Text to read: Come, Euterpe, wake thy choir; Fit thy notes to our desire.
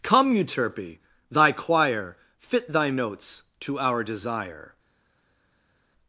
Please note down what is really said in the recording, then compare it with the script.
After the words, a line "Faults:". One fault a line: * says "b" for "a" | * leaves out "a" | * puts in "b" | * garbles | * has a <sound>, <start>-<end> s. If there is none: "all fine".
Come, Euterpe, thy choir; Fit thy notes to our desire.
Faults:
* leaves out "wake"